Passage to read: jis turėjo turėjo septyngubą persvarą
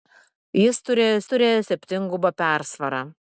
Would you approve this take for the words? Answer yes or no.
yes